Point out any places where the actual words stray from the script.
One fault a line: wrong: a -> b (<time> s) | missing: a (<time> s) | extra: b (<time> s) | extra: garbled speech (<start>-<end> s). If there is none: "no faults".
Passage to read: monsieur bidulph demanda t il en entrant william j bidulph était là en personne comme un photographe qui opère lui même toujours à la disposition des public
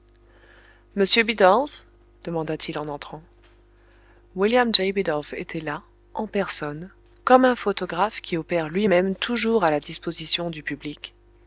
wrong: des -> du (10.5 s)